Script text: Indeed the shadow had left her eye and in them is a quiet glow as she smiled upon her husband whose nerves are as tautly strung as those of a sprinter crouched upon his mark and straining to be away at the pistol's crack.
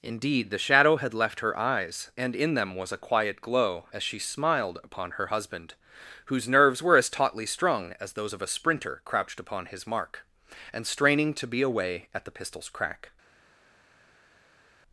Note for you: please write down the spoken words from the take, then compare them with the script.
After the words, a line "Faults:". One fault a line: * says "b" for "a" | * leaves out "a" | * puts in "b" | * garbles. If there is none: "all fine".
Indeed the shadow had left her eyes and in them was a quiet glow as she smiled upon her husband whose nerves were as tautly strung as those of a sprinter crouched upon his mark and straining to be away at the pistol's crack.
Faults:
* says "eyes" for "eye"
* says "was" for "is"
* says "were" for "are"